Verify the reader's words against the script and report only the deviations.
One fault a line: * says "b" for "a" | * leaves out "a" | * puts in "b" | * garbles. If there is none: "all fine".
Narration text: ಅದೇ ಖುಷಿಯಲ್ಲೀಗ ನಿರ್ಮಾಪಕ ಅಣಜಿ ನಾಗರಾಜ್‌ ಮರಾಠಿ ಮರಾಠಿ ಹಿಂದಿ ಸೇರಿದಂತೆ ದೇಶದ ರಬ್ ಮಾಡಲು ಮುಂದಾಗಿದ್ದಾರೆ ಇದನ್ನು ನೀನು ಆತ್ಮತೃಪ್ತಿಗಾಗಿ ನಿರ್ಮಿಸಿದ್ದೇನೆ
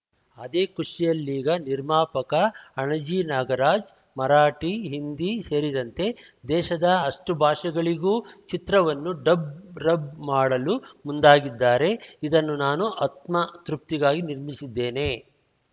* leaves out "ಮರಾಠಿ"
* puts in "ಅಷ್ಟುಭಾಷೆಗಳಿಗೂ ಚಿತ್ರವನ್ನು ಡಬ್"
* says "ನಾನು" for "ನೀನು"